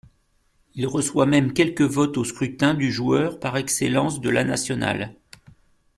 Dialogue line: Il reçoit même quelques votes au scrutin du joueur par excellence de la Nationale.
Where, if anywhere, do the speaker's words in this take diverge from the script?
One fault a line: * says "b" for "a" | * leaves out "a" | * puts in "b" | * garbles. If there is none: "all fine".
all fine